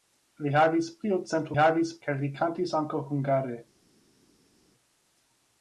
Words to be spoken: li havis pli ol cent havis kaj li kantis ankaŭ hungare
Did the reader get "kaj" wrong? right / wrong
right